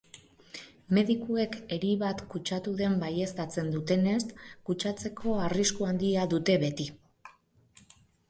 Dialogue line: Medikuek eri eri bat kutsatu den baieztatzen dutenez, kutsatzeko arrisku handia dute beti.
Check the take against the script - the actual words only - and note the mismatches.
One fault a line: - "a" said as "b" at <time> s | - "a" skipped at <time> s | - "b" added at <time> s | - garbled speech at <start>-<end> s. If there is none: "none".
- "eri" skipped at 1.9 s